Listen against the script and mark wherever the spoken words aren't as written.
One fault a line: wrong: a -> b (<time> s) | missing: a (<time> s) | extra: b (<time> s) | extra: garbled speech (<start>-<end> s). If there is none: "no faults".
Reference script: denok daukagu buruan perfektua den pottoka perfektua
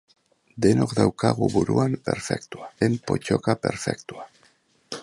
no faults